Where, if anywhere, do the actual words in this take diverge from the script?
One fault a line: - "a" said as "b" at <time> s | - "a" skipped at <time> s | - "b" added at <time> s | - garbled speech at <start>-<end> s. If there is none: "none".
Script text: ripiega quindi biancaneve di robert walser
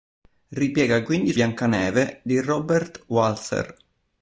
none